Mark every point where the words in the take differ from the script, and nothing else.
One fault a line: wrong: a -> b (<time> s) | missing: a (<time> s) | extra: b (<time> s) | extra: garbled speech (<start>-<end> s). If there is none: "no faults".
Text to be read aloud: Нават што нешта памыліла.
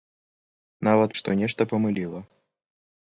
no faults